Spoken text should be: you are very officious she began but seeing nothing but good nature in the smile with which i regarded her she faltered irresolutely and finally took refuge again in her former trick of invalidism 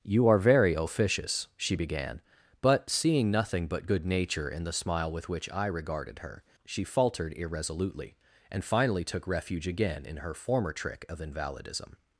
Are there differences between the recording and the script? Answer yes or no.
no